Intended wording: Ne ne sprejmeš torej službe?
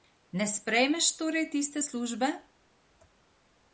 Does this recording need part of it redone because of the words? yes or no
yes